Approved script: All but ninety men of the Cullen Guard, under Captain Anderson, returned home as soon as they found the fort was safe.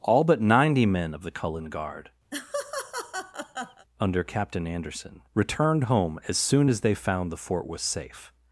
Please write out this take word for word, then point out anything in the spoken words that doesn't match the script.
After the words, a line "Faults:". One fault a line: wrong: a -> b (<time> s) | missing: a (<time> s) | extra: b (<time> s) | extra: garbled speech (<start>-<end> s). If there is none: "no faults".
All but ninety men of the Cullen Guard, under Captain Anderson, returned home as soon as they found the fort was safe.
Faults:
no faults